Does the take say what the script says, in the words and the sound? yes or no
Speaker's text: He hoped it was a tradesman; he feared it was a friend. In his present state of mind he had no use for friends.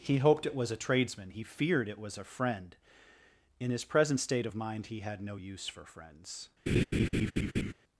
no